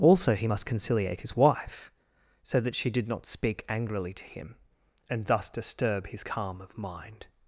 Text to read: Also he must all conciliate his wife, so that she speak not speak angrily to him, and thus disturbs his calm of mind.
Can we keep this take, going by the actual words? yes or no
no